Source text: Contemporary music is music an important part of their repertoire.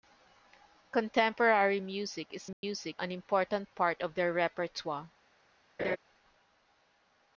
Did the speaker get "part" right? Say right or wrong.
right